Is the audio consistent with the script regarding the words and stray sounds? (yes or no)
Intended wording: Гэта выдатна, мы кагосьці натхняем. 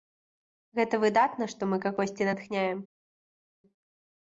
no